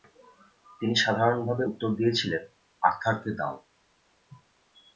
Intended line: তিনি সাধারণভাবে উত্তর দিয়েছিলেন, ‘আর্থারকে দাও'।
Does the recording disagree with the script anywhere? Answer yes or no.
no